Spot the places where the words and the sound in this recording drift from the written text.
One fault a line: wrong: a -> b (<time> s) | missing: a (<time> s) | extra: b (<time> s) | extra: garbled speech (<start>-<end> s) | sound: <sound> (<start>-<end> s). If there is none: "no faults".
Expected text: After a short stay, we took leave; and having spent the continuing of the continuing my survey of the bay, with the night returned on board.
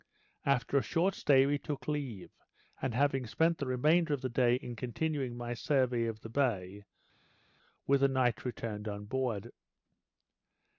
wrong: continuing -> remainder (3.7 s)
extra: day in (4.3 s)